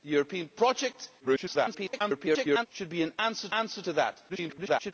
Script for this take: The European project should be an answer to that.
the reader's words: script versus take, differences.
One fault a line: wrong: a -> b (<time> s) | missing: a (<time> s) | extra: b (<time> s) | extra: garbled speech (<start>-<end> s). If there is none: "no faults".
extra: garbled speech (1.2-2.7 s)
extra: answer (3.5 s)
extra: garbled speech (4.3-4.9 s)